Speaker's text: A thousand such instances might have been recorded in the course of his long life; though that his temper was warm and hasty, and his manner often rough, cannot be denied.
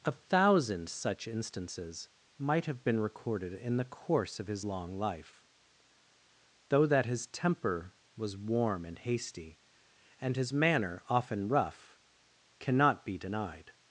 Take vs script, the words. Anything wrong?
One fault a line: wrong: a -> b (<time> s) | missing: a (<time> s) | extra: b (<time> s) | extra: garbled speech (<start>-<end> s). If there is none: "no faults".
no faults